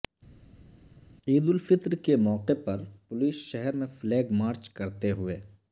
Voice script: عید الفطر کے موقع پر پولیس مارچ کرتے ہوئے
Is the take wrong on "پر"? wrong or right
right